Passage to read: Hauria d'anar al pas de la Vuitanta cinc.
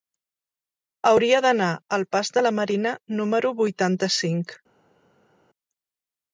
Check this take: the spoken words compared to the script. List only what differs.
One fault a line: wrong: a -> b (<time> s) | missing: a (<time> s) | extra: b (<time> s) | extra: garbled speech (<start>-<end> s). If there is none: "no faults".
extra: Marina número (2.6 s)